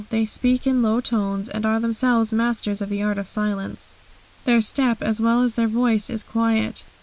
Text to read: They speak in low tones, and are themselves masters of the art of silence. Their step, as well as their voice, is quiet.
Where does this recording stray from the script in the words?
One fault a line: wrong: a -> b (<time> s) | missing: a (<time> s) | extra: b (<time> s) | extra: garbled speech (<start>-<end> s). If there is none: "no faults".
no faults